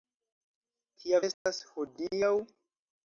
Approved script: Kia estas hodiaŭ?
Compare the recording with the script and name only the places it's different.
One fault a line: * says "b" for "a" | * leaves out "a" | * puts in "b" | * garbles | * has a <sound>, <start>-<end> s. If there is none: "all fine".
* has a dropout, 1.3-1.5 s